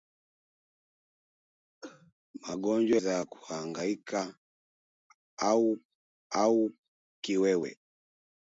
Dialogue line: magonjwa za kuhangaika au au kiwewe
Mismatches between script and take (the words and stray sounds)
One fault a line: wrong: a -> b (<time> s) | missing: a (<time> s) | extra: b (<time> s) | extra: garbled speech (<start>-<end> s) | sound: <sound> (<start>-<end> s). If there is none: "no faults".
sound: cough (1.8-2.1 s)